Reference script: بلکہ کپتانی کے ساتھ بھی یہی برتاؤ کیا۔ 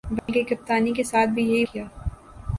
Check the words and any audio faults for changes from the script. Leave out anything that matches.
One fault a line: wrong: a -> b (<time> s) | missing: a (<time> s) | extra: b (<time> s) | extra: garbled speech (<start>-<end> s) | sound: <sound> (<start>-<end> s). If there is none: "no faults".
sound: dropout (0.2-0.3 s)
missing: برتاؤ (1.6 s)